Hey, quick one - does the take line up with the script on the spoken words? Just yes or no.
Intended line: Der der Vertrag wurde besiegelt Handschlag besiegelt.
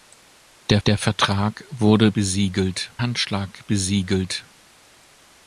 yes